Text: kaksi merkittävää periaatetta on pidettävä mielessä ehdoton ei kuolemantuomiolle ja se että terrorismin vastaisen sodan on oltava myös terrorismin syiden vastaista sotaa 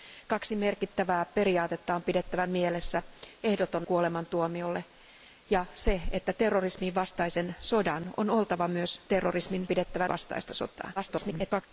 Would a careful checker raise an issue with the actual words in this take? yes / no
yes